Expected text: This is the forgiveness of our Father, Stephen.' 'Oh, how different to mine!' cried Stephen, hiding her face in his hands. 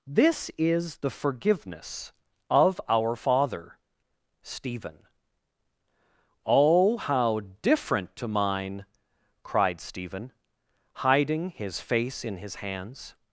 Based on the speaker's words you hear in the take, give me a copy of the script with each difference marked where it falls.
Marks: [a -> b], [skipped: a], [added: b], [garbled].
This is the forgiveness of our Father, Stephen.' 'Oh, how different to mine!' cried Stephen, hiding [her -> his] face in his hands.